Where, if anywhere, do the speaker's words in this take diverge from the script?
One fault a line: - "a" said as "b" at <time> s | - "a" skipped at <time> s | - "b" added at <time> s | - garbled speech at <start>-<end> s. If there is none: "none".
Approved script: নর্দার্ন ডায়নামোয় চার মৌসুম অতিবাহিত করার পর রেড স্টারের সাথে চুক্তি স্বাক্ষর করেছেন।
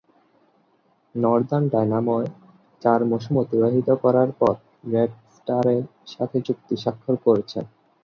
none